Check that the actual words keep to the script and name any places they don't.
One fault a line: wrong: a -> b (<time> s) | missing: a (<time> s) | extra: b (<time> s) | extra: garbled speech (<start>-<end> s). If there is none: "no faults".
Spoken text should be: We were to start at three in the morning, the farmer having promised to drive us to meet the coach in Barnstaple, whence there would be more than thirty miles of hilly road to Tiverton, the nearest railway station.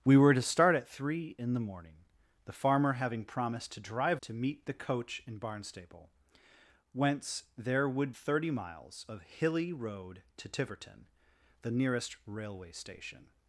missing: us (4.2 s)
missing: be more than (8.1 s)